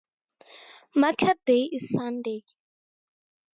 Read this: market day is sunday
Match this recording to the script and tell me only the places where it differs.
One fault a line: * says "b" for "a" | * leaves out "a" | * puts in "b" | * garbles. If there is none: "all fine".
all fine